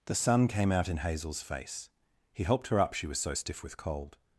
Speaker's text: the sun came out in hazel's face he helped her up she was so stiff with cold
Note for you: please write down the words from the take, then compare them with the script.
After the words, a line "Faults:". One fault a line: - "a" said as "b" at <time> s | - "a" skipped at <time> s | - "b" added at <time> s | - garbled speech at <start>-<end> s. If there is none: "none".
the sun came out in hazel's face he helped her up she was so stiff with cold
Faults:
none